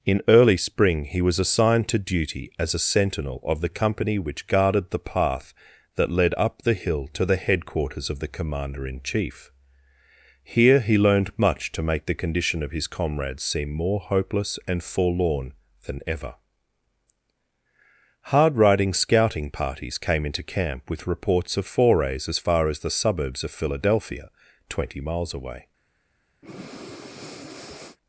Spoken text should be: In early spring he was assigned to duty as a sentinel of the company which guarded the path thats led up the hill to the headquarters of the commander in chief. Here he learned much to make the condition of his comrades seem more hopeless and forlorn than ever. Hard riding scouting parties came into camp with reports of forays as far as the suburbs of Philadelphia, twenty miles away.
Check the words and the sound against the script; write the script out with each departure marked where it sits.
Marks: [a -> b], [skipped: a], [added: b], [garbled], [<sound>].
In early spring he was assigned to duty as a sentinel of the company which guarded the path [thats -> that] led up the hill to the headquarters of the commander in chief. Here he learned much to make the condition of his comrades seem more hopeless and forlorn than ever. Hard riding scouting parties came into camp with reports of forays as far as the suburbs of Philadelphia, twenty miles away. [breath]